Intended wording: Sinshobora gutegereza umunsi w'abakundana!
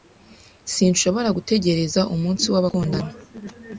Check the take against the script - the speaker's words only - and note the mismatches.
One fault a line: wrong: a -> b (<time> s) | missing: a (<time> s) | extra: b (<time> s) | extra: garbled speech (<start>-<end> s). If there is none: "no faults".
no faults